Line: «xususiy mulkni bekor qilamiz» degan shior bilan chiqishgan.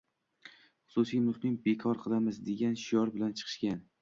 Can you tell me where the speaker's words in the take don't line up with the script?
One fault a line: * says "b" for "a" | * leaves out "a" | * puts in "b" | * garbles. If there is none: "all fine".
all fine